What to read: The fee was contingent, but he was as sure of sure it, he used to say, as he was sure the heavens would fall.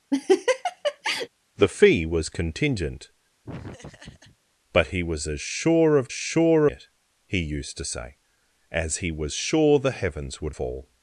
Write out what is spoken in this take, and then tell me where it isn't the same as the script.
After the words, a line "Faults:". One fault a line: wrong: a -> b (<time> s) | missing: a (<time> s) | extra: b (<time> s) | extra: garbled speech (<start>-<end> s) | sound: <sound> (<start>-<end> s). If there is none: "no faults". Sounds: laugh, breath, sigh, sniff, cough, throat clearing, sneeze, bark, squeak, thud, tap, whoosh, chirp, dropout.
The fee was contingent, but he was as sure of sure it, he used to say, as he was sure the heavens would fall.
Faults:
sound: laugh (0.1-1.3 s)
sound: laugh (3.4-4.4 s)